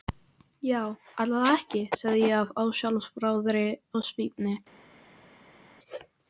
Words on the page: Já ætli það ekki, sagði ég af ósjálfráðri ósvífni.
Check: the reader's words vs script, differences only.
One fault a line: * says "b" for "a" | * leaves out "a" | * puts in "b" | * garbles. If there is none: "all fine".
all fine